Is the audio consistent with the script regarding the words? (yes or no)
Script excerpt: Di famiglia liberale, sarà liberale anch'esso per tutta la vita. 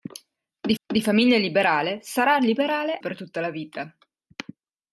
no